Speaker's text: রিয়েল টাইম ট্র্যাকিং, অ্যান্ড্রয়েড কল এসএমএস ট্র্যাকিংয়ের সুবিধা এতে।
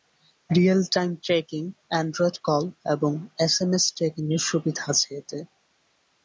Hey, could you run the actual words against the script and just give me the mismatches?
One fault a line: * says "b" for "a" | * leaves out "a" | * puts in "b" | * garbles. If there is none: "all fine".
* puts in "এবং"
* puts in "আছে"